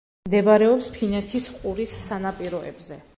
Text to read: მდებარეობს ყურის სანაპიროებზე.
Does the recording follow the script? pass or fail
fail